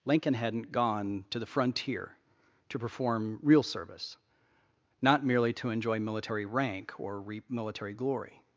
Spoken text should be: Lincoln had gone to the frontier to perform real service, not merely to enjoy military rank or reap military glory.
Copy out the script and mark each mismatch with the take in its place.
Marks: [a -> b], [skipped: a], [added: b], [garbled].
Lincoln [had -> hadn't] gone to the frontier to perform real service, not merely to enjoy military rank or reap military glory.